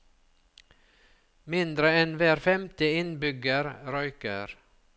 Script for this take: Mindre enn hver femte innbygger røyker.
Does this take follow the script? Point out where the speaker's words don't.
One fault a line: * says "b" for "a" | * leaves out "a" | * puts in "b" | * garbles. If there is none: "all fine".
all fine